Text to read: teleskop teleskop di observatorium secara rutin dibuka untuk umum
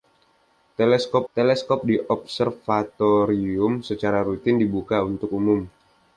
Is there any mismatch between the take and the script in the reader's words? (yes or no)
no